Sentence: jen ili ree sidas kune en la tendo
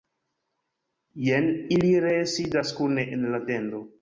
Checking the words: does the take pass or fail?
pass